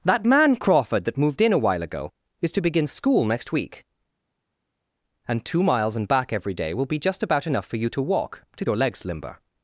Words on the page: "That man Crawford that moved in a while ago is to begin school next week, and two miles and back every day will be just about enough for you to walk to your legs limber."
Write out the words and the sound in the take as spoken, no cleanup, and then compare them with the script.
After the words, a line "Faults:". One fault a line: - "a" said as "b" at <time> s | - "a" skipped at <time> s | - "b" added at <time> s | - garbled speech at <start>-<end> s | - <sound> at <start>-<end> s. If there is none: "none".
"That man Crawford that moved in a while ago is to begin school next week, and two miles and back every day will be just about enough for you to walk to your legs limber."
Faults:
none